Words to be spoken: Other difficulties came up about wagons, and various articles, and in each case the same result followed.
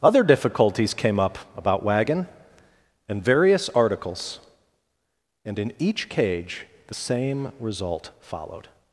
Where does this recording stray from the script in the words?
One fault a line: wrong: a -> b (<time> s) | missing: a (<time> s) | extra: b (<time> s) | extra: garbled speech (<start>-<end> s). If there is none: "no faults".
wrong: wagons -> wagon (1.8 s)
wrong: case -> cage (6.1 s)